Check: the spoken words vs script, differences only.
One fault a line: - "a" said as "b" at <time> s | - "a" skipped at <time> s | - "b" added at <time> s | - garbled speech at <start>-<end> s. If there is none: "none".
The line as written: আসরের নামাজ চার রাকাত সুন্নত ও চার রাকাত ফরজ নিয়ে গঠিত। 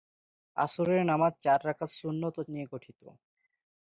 - "চার রাকাত ফরজ" skipped at 2.5 s